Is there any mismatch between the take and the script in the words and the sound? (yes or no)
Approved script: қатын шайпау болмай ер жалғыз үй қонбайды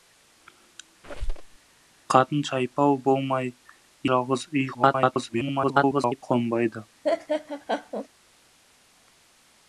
yes